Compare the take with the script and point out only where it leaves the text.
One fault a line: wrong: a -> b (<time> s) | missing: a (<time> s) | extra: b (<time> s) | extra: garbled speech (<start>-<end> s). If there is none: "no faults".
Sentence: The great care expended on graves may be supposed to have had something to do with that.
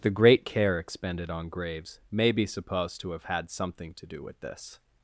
wrong: that -> this (4.4 s)